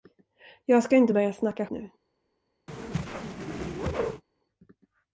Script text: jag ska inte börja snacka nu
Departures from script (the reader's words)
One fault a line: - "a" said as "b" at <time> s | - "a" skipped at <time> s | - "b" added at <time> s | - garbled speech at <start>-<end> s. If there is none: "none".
none